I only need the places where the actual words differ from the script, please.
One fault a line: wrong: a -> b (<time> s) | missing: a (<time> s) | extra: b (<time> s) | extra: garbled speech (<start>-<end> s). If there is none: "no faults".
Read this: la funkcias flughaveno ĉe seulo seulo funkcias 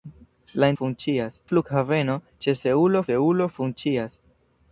no faults